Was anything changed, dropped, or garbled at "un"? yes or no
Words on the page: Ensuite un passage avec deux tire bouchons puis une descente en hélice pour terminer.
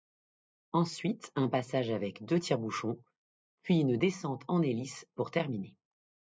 no